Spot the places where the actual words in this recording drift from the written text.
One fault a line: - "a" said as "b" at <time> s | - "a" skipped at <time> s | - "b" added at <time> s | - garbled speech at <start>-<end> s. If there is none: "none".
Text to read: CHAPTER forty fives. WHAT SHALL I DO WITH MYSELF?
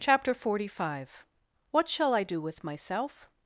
- "fives" said as "five" at 0.8 s